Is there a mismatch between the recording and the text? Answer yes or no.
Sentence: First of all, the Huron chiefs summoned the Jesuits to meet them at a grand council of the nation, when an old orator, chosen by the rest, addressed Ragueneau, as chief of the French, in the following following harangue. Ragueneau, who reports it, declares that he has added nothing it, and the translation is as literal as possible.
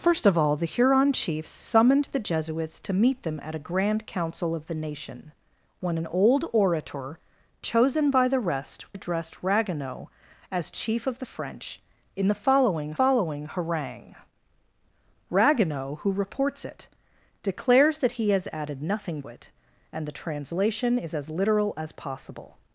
no